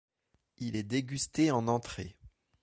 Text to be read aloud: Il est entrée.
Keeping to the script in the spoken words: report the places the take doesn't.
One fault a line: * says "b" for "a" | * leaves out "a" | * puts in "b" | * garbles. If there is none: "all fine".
* puts in "dégusté en"